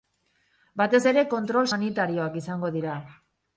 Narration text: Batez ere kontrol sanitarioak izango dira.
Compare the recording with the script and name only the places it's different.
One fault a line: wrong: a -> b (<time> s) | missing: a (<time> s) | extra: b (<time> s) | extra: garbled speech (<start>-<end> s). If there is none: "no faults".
no faults